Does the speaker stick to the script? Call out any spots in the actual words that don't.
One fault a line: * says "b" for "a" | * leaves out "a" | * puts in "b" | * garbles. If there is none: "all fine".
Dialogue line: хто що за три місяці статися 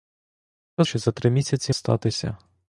all fine